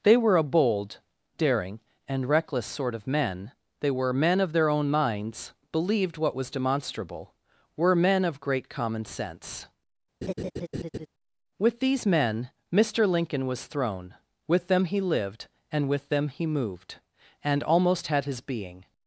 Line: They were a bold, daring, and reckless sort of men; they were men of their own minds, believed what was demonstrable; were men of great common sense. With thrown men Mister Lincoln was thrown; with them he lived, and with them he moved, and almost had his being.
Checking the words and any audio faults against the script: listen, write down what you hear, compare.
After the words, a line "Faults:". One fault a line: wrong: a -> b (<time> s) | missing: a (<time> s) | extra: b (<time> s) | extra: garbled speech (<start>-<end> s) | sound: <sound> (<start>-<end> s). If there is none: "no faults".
They were a bold, daring, and reckless sort of men; they were men of their own minds, believed what was demonstrable; were men of great common sense. With these men Mister Lincoln was thrown; with them he lived, and with them he moved, and almost had his being.
Faults:
sound: laugh (10.2-11.1 s)
wrong: thrown -> these (11.8 s)